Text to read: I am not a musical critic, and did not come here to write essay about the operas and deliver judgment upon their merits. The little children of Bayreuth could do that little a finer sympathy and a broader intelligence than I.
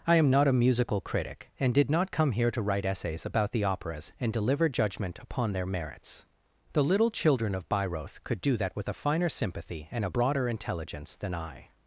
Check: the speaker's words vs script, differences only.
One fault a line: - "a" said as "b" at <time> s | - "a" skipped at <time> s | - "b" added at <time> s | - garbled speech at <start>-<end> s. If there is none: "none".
- "essay" said as "essays" at 2.9 s
- "little" said as "with" at 8.7 s